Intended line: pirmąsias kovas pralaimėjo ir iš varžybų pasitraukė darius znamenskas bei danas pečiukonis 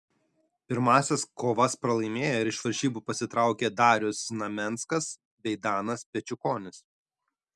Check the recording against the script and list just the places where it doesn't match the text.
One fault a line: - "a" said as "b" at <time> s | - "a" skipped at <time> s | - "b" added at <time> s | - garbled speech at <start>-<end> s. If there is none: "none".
none